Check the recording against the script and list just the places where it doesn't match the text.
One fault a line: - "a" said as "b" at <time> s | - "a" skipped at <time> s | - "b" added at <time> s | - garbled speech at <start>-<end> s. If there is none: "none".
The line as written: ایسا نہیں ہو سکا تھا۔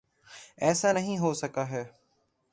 - "تھا" said as "ہے" at 1.7 s